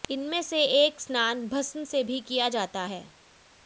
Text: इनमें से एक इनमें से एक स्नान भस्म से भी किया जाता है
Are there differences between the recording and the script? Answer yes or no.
yes